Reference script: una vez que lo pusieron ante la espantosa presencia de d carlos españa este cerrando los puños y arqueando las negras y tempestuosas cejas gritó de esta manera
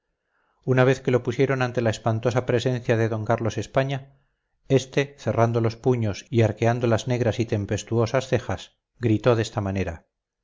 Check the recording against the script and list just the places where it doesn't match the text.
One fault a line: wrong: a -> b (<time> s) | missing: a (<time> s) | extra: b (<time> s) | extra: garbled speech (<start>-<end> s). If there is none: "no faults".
no faults